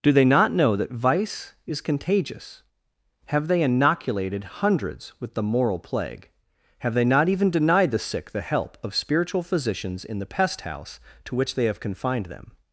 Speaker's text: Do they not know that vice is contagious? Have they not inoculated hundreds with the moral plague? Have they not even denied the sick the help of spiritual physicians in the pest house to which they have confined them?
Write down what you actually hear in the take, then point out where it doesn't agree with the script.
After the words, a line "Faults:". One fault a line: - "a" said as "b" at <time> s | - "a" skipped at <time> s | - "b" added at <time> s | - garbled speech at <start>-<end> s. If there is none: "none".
Do they not know that vice is contagious? Have they inoculated hundreds with the moral plague? Have they not even denied the sick the help of spiritual physicians in the pest house to which they have confined them?
Faults:
- "not" skipped at 3.6 s